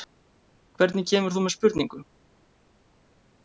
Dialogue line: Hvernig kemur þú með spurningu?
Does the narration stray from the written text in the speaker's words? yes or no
no